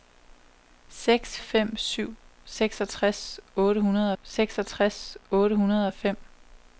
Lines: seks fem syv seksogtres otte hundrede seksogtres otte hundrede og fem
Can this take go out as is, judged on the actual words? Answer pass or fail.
pass